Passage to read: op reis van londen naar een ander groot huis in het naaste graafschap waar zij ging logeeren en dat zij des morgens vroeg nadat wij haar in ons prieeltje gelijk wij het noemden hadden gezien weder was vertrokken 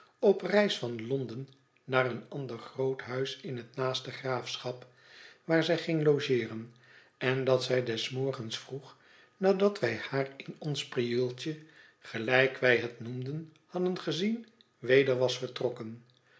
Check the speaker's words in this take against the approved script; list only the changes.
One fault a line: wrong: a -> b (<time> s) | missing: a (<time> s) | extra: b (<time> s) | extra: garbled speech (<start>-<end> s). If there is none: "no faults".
no faults